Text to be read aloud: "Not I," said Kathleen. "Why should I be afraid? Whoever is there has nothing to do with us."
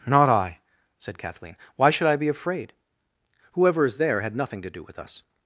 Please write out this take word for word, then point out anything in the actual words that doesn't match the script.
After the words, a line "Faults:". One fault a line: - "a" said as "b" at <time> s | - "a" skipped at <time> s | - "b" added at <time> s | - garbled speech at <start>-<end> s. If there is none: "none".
"Not I," said Kathleen. "Why should I be afraid? Whoever is there had nothing to do with us."
Faults:
- "has" said as "had" at 4.2 s